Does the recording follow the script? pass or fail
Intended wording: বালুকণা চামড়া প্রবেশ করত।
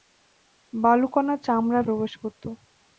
pass